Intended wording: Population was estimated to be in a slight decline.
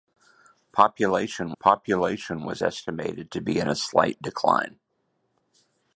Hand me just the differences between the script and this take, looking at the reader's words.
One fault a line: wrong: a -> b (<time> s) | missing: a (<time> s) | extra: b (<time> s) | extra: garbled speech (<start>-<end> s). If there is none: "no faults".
extra: population (1.6 s)